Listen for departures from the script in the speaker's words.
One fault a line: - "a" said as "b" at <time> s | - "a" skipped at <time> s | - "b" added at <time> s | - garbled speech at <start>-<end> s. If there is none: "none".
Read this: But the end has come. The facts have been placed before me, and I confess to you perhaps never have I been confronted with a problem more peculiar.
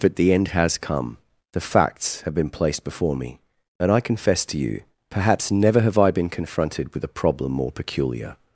none